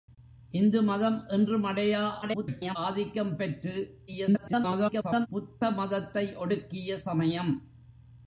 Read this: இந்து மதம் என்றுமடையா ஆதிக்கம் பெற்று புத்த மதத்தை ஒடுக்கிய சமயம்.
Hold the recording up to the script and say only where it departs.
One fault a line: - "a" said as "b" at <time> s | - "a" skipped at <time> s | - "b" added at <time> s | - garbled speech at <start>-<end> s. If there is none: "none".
- garbled speech at 2.2-2.8 s
- garbled speech at 4.1-5.3 s